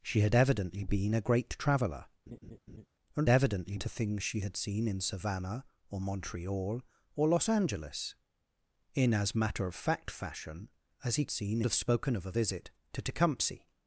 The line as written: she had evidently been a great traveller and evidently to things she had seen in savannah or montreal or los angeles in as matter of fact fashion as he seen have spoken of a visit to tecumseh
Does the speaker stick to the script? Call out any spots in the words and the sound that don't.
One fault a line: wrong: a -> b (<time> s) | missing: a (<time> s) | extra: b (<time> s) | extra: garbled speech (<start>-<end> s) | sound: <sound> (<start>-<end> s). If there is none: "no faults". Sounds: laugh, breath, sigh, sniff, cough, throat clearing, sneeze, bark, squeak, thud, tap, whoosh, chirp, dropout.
sound: laugh (2.3-2.9 s)